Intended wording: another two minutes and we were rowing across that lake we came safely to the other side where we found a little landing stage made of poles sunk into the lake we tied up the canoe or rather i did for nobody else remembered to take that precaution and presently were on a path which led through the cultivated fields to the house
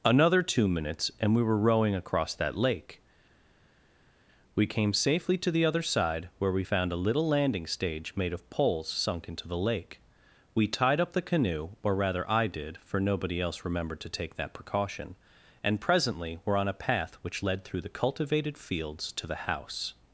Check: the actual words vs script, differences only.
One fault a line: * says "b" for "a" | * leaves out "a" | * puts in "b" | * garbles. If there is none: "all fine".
all fine